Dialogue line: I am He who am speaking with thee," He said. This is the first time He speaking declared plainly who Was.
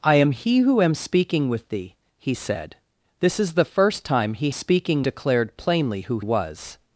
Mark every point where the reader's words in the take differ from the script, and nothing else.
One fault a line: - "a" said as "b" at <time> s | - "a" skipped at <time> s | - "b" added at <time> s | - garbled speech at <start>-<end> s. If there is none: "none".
none